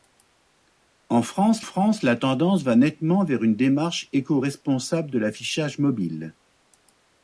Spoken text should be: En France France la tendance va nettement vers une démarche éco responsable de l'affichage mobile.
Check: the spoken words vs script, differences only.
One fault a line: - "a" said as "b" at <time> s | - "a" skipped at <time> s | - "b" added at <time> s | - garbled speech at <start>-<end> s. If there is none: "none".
none